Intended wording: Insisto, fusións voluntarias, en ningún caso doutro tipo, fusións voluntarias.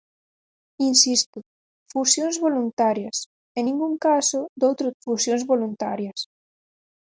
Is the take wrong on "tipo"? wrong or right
wrong